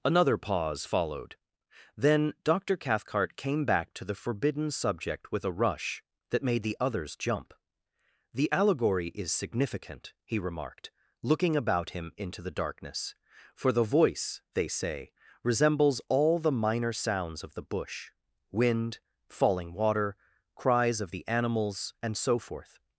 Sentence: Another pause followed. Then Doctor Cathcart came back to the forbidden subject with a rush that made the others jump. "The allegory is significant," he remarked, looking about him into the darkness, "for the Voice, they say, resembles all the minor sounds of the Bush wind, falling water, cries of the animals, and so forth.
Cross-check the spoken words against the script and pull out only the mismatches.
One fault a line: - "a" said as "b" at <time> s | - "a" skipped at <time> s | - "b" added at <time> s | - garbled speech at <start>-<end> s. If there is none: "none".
none